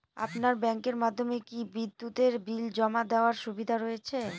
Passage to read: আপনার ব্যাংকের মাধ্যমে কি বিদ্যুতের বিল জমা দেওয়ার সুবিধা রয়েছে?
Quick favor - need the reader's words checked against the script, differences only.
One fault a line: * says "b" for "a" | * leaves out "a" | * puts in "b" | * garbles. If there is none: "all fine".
all fine